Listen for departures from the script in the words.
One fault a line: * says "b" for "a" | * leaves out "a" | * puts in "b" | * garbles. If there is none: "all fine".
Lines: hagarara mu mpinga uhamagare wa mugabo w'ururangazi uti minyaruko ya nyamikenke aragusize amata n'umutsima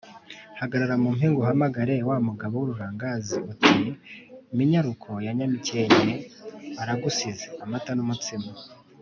all fine